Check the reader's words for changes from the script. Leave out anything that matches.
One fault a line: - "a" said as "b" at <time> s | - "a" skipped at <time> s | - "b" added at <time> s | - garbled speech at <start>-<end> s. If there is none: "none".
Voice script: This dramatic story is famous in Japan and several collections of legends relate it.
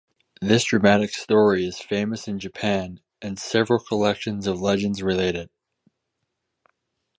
none